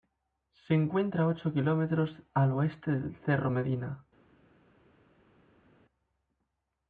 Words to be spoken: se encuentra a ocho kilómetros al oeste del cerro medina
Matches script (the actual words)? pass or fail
pass